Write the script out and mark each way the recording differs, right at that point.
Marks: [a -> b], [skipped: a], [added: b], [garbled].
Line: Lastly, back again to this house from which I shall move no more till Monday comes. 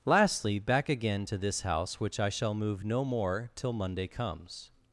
Lastly, back again to this house [skipped: from] which I shall move no more till Monday comes.